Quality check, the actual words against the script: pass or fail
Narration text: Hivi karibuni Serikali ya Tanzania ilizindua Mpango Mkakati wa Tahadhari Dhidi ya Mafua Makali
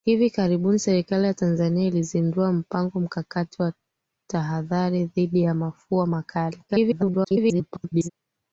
fail